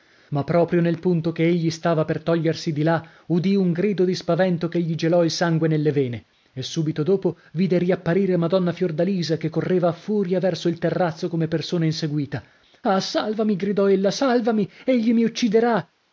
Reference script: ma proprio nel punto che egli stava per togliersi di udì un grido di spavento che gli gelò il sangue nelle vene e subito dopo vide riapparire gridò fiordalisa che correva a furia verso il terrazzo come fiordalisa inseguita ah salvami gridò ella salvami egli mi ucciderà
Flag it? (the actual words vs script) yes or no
yes